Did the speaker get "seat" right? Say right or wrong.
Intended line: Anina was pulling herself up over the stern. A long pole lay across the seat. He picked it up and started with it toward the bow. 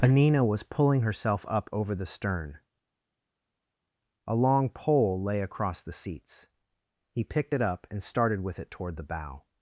wrong